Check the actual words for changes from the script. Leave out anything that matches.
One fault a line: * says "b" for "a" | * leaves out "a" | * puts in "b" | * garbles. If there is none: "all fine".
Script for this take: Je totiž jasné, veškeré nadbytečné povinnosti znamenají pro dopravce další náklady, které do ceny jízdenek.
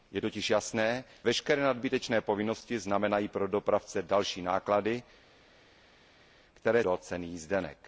all fine